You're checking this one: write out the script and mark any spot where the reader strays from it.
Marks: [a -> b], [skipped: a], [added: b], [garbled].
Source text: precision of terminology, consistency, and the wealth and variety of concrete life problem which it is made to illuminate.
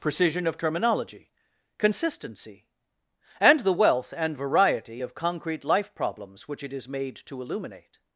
precision of terminology, consistency, and the wealth and variety of concrete life [problem -> problems] which it is made to illuminate.